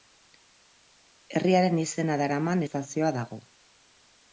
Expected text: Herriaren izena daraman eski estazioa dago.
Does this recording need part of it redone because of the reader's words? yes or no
yes